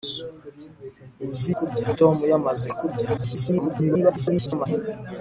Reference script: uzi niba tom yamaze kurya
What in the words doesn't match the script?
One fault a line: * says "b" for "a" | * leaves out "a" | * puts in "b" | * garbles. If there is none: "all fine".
* says "kurya" for "niba"
* garbles